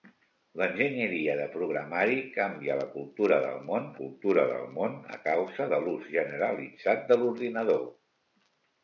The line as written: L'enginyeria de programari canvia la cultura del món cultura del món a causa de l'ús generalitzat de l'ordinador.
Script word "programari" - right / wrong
right